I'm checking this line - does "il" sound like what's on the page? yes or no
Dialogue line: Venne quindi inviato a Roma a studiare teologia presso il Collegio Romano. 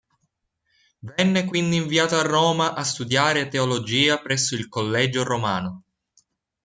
yes